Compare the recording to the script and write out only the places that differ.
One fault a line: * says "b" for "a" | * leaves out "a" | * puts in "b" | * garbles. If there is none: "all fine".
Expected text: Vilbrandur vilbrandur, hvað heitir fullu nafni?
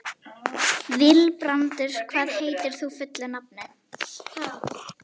* leaves out "vilbrandur"
* puts in "þú"